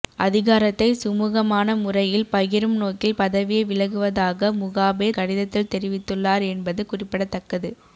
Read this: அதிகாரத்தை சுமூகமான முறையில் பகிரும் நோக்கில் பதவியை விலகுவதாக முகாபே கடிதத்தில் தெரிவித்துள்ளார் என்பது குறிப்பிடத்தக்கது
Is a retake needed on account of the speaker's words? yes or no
no